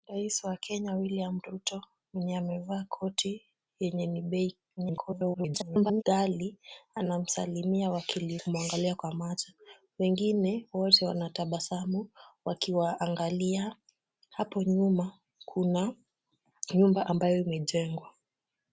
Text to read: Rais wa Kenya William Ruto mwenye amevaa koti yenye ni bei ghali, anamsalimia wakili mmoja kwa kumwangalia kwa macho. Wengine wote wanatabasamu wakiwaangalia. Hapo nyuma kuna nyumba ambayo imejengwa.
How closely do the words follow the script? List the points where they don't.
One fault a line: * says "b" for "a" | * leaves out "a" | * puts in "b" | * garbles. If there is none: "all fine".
* garbles
* leaves out "mmoja kwa"